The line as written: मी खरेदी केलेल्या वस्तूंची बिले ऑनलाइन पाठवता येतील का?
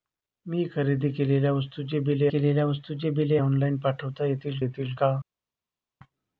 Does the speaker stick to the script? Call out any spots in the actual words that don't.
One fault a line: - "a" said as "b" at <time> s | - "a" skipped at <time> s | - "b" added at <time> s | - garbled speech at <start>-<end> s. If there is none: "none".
- "केलेल्या वस्तूंची बिले" added at 2.3 s
- "येतील" added at 4.6 s